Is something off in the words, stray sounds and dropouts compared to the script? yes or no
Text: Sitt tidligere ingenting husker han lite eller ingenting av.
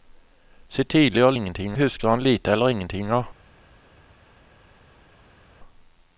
no